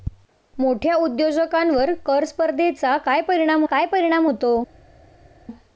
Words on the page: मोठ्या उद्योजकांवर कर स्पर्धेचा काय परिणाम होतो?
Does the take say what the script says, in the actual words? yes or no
no